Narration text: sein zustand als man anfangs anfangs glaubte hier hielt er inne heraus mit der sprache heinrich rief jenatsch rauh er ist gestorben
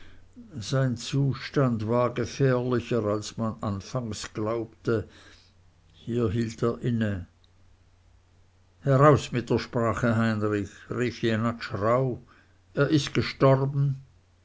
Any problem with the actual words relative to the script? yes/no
yes